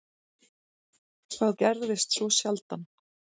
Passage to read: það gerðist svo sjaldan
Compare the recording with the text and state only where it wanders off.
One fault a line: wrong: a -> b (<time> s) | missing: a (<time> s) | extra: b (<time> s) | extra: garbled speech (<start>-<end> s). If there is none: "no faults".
no faults